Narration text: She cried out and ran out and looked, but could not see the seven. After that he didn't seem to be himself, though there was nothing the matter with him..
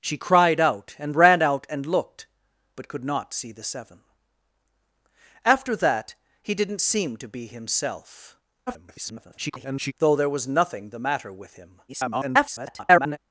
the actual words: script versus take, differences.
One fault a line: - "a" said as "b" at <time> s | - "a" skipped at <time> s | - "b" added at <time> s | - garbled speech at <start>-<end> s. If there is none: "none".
- garbled speech at 8.7-9.9 s
- garbled speech at 11.9-13.2 s